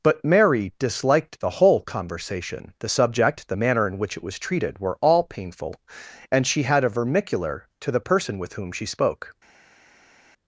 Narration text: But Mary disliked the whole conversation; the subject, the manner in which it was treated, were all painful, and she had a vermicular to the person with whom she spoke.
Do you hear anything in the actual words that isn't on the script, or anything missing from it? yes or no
no